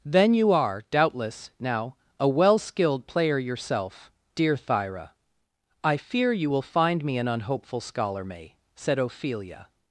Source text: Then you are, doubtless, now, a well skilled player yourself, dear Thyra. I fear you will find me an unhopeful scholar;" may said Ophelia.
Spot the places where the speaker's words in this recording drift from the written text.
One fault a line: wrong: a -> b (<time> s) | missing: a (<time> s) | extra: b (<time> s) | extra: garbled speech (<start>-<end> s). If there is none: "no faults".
no faults